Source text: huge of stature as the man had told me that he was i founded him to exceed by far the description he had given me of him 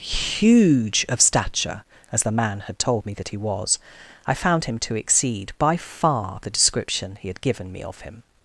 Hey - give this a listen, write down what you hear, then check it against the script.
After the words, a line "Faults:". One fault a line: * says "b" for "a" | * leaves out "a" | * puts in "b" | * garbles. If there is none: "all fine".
huge of stature as the man had told me that he was i found him to exceed by far the description he had given me of him
Faults:
* says "found" for "founded"